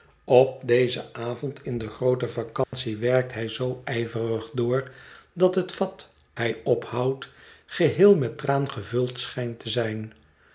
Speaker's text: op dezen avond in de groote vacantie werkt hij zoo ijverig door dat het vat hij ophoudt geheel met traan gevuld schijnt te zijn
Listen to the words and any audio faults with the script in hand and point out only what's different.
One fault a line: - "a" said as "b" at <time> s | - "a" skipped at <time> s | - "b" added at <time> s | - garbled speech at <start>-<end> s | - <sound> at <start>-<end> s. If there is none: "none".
- dropout at 2.6-2.7 s